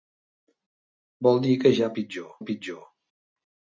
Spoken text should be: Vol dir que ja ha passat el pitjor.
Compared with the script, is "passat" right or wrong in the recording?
wrong